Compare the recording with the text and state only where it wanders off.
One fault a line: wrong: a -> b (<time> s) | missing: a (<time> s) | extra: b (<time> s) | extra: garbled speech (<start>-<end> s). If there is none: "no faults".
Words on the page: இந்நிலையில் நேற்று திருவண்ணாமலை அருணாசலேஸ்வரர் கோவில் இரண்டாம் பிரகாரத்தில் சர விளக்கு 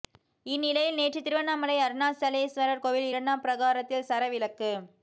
no faults